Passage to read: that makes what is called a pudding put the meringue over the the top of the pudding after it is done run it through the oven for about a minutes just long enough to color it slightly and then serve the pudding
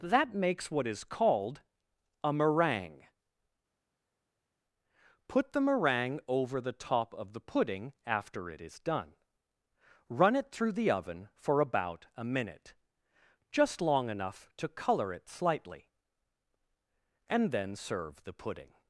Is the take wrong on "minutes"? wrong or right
wrong